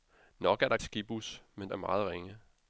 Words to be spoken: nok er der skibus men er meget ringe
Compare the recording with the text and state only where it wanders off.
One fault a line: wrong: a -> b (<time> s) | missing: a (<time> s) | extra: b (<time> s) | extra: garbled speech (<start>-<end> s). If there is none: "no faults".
no faults